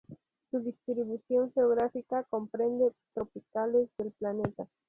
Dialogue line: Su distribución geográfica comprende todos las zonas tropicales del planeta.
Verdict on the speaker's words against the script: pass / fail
fail